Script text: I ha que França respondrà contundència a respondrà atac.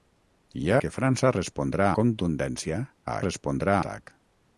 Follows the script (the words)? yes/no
yes